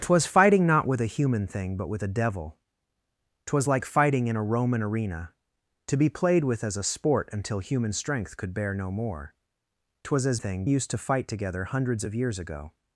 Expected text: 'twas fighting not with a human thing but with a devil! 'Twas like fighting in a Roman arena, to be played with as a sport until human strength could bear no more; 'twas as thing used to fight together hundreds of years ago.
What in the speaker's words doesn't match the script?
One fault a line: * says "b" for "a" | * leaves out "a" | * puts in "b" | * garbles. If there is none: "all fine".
all fine